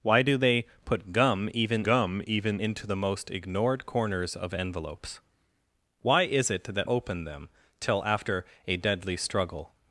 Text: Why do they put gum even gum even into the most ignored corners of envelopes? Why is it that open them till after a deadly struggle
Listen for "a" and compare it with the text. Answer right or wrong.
right